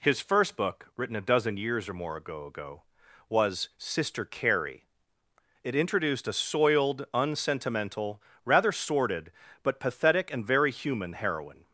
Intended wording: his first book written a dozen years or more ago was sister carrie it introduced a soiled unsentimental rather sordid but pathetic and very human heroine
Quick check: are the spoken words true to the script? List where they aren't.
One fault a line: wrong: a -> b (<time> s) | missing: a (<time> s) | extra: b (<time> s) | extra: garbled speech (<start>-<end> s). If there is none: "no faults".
extra: ago (2.5 s)